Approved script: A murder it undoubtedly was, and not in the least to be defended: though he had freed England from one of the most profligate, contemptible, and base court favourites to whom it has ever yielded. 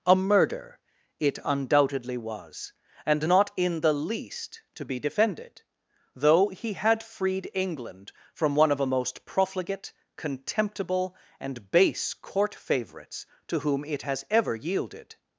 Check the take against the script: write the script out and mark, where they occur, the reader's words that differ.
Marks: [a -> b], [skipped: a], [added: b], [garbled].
A murder it undoubtedly was, and not in the least to be defended: though he had freed England from one of [the -> a] most profligate, contemptible, and base court favourites to whom it has ever yielded.